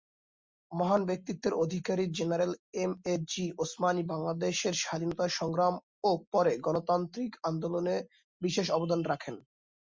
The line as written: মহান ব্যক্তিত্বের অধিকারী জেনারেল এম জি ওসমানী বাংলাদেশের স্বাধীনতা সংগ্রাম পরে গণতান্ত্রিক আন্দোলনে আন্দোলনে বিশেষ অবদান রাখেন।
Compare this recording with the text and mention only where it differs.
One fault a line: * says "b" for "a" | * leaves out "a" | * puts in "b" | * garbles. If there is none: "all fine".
* puts in "এ"
* puts in "ও"
* leaves out "আন্দোলনে"